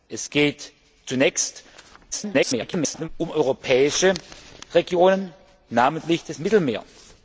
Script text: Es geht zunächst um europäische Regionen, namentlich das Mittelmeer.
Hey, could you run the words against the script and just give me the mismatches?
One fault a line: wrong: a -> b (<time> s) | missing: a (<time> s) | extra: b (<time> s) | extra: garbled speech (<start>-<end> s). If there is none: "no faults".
extra: garbled speech (2.1-3.1 s)